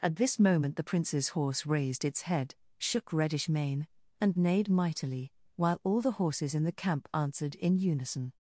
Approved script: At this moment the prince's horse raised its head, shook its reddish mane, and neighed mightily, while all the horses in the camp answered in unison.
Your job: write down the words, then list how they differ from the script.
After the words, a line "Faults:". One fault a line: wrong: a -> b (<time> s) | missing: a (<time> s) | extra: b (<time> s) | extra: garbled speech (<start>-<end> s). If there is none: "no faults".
At this moment the prince's horse raised its head, shook reddish mane, and neighed mightily, while all the horses in the camp answered in unison.
Faults:
missing: its (3.1 s)